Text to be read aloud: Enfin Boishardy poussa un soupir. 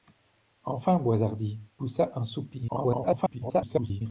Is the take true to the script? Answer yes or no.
no